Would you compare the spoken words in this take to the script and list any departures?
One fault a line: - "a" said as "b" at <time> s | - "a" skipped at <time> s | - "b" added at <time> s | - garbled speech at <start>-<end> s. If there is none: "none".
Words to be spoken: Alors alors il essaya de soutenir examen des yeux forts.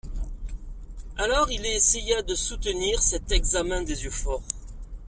- "alors" skipped at 1.5 s
- "cet" added at 3.0 s